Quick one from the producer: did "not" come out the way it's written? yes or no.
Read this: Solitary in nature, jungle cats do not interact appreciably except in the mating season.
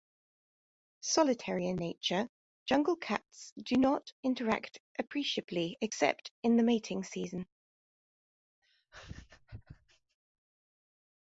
yes